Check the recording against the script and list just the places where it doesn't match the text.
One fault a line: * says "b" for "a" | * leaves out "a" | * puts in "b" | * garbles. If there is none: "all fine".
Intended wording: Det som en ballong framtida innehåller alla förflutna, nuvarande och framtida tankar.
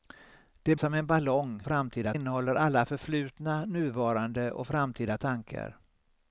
all fine